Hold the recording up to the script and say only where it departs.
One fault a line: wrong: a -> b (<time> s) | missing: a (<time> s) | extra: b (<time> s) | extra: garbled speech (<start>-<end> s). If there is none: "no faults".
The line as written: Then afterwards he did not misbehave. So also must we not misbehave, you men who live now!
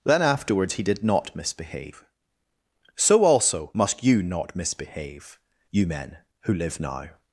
wrong: we -> you (4.0 s)